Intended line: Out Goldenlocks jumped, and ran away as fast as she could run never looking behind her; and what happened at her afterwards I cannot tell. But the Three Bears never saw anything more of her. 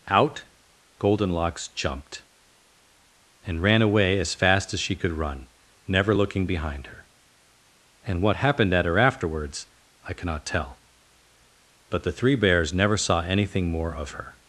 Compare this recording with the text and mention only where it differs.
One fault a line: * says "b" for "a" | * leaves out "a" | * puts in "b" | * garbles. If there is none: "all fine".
all fine